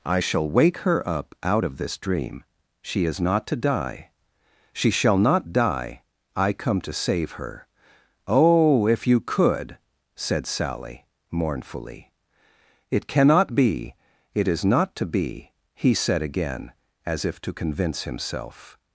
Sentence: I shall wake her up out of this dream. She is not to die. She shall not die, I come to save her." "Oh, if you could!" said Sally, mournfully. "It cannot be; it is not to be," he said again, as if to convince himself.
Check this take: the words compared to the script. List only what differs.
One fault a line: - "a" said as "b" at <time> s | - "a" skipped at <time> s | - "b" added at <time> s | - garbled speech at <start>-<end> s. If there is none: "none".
none